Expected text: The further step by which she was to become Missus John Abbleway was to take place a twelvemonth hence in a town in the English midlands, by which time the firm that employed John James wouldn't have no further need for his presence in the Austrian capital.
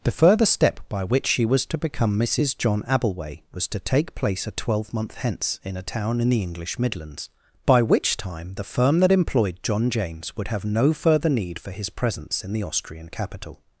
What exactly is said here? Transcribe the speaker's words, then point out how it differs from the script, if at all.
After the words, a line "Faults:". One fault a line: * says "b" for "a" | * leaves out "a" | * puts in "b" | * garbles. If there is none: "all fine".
The further step by which she was to become Missus John Abbleway was to take place a twelvemonth hence in a town in the English midlands, by which time the firm that employed John James would have no further need for his presence in the Austrian capital.
Faults:
* says "would" for "wouldn't"